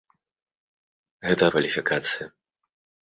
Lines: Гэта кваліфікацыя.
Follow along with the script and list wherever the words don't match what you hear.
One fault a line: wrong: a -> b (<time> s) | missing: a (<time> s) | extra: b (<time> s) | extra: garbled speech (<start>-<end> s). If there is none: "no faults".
no faults